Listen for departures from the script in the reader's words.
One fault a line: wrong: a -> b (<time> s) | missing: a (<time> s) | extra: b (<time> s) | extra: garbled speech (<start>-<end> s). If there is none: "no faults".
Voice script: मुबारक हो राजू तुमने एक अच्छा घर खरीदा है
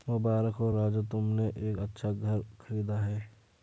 no faults